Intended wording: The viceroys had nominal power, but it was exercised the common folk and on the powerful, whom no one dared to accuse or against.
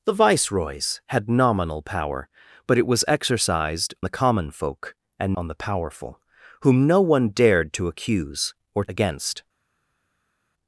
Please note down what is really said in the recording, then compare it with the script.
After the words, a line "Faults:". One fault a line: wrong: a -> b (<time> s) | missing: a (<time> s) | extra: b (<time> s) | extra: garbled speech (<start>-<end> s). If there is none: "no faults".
The viceroys had nominal power, but it was exercised the common folk and on the powerful, whom no one dared to accuse or against.
Faults:
no faults